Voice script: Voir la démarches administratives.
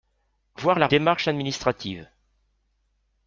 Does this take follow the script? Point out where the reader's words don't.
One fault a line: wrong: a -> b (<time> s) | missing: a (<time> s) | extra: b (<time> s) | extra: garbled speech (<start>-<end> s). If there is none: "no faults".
no faults